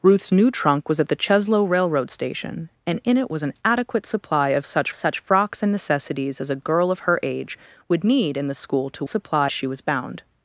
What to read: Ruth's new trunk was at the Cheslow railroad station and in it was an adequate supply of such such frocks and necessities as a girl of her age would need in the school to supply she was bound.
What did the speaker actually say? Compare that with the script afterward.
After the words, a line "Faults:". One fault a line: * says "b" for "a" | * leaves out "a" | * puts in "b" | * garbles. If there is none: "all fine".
Ruth's new trunk was at the Cheslow railroad station and in it was an adequate supply of such such frocks and necessities as a girl of her age would need in the school to supply she was bound.
Faults:
all fine